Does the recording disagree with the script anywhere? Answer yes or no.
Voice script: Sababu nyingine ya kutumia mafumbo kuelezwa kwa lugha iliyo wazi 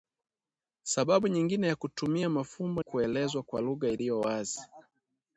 no